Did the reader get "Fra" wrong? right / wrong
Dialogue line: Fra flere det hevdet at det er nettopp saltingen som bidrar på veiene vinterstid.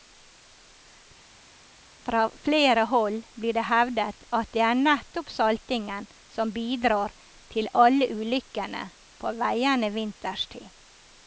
right